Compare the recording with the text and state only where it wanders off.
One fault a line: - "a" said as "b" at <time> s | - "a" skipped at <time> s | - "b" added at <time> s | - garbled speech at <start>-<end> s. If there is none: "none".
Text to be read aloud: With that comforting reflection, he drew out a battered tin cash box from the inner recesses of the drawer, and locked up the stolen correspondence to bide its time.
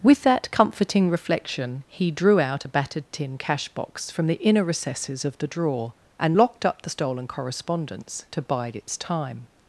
none